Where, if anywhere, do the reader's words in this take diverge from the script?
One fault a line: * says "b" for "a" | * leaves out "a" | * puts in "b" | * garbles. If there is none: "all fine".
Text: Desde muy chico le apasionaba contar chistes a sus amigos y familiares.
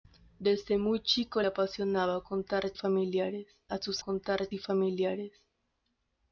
* leaves out "le"
* says "familiares" for "chistes"
* says "contar" for "amigos"